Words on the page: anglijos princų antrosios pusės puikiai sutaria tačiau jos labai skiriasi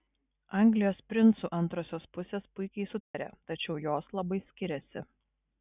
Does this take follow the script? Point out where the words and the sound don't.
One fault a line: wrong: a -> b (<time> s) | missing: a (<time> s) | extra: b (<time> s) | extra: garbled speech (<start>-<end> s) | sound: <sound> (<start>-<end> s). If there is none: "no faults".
sound: dropout (3.0-3.1 s)